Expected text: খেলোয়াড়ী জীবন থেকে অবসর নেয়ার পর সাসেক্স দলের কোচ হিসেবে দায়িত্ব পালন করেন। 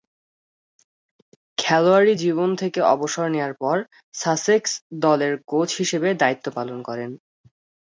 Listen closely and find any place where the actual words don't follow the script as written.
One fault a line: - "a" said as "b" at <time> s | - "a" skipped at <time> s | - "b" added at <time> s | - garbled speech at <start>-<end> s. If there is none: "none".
none